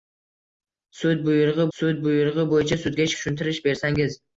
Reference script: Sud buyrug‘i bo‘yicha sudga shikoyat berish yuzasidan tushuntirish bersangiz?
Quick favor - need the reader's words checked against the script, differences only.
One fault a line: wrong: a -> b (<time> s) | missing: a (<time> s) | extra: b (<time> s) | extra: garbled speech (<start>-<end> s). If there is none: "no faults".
extra: sud buyrug‘i (1.8 s)
missing: shikoyat berish yuzasidan (3.1 s)